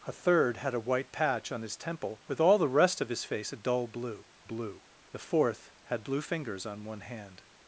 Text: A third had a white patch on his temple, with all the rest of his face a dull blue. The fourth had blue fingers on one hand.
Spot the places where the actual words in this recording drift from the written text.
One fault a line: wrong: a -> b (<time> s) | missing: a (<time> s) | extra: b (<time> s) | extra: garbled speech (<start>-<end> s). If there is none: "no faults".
extra: blue (4.4 s)